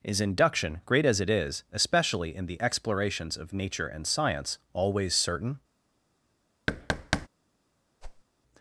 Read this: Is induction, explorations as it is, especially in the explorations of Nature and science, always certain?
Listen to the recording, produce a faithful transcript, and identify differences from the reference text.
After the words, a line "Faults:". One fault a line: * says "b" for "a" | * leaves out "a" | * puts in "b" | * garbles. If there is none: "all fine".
Is induction, great as it is, especially in the explorations of Nature and science, always certain?
Faults:
* says "great" for "explorations"